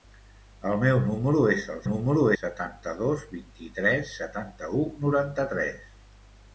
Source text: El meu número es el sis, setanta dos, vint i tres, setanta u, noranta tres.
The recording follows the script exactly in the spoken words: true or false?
false